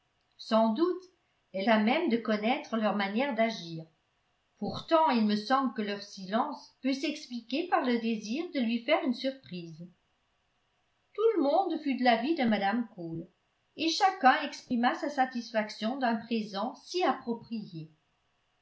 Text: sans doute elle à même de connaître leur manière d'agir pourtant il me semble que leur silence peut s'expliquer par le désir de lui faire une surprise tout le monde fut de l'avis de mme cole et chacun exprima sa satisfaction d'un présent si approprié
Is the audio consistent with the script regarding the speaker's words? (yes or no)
yes